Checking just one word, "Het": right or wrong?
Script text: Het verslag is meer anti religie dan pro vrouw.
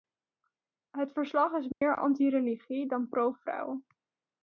right